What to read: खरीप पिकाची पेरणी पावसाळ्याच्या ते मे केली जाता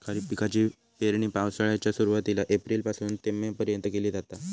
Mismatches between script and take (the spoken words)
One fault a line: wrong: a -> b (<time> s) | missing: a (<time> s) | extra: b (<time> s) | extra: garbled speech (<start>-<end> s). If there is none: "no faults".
extra: सुरुवातीला एप्रिल पासून (1.9 s)
extra: पर्यंत (3.5 s)